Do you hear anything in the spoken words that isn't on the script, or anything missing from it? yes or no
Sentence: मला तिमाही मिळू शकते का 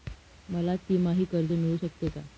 yes